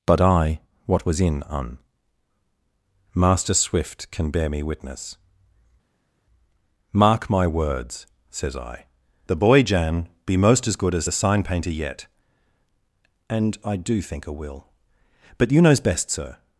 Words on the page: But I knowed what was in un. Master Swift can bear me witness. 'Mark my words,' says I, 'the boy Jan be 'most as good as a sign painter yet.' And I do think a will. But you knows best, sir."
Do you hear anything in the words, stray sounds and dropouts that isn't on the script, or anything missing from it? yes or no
yes